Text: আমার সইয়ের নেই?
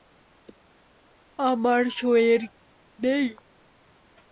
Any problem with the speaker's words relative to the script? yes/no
no